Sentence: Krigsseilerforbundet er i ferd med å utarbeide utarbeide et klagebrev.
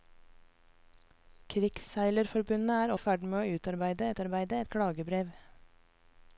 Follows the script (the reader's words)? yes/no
yes